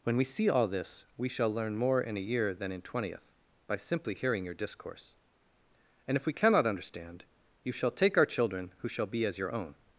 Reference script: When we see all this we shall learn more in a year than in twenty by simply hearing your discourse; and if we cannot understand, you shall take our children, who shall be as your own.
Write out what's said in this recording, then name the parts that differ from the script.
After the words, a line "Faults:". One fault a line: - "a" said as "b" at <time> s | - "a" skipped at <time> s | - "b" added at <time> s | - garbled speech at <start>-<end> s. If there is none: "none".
When we see all this we shall learn more in a year than in twentieth by simply hearing your discourse; and if we cannot understand, you shall take our children, who shall be as your own.
Faults:
- "twenty" said as "twentieth" at 2.8 s